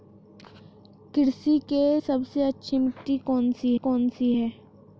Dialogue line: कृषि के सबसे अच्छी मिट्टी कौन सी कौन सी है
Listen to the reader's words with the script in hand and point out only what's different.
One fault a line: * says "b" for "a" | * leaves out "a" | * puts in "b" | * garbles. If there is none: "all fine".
all fine